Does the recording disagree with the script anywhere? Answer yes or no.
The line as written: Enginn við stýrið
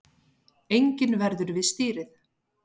yes